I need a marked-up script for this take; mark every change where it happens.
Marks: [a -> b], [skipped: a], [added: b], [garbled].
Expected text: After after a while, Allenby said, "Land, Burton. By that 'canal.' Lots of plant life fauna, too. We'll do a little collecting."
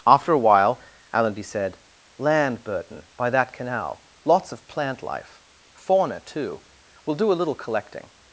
After [skipped: after] a while, Allenby said, "Land, Burton. By that 'canal.' Lots of plant life fauna, too. We'll do a little collecting."